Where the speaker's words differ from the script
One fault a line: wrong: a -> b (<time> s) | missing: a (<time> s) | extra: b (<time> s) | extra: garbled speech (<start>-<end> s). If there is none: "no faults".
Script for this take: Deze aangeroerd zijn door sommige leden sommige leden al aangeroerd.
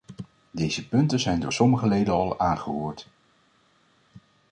wrong: aangeroerd -> punten (0.9 s)
missing: sommige leden (2.1 s)